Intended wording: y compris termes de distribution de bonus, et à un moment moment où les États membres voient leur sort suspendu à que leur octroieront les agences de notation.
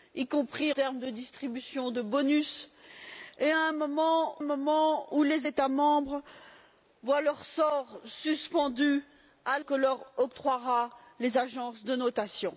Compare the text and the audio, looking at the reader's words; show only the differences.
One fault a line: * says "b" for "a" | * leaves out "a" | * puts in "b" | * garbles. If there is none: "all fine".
all fine